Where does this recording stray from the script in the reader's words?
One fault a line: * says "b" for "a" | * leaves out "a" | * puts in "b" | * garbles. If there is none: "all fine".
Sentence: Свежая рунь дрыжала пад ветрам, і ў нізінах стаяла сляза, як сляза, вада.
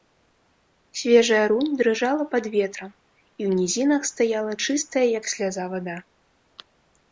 * says "чыстая" for "сляза"